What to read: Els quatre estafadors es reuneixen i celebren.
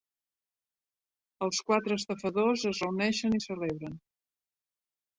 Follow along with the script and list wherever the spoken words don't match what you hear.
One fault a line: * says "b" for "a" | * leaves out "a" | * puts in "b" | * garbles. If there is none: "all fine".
all fine